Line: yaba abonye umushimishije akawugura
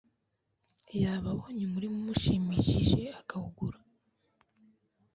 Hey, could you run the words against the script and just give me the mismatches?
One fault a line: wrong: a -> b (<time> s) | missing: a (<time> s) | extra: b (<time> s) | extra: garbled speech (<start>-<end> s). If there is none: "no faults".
extra: umurima (1.6 s)